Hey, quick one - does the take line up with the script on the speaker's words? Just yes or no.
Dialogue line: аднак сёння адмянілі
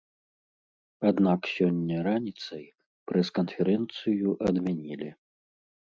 no